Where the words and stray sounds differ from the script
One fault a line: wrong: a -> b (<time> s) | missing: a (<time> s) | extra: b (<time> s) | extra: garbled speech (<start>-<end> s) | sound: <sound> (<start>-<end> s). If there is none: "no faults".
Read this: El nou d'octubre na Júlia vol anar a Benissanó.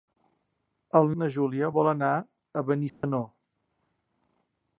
missing: nou d'octubre (1.1 s)
sound: dropout (2.9-3.0 s)